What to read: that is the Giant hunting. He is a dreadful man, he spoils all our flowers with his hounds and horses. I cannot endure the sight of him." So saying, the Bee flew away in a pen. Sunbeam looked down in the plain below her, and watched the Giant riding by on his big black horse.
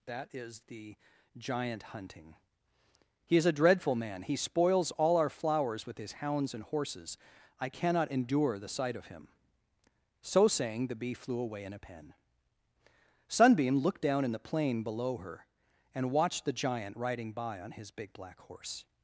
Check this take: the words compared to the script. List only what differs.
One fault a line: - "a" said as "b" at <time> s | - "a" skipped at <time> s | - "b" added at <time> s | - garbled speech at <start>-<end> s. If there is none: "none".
none